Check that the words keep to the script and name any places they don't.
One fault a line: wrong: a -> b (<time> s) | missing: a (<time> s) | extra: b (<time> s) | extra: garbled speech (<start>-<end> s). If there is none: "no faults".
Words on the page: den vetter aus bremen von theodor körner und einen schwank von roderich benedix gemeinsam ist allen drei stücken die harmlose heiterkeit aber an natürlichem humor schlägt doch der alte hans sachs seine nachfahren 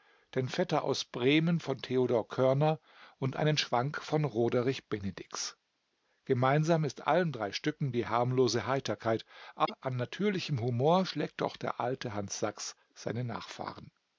no faults